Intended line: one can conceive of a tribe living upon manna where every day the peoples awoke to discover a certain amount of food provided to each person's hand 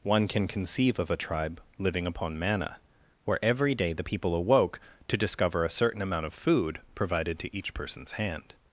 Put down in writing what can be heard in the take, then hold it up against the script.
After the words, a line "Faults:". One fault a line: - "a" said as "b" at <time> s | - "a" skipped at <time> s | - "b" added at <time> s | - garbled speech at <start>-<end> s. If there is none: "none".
one can conceive of a tribe living upon manna where every day the people awoke to discover a certain amount of food provided to each person's hand
Faults:
- "peoples" said as "people" at 4.0 s